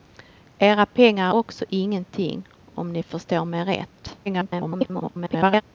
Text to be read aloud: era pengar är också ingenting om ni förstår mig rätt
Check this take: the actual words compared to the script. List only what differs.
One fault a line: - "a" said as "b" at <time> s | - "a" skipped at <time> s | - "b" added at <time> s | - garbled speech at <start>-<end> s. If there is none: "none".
- "är" skipped at 1.3 s
- garbled speech at 4.3-5.6 s